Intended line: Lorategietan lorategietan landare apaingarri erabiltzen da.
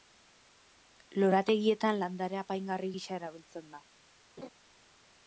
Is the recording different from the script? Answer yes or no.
yes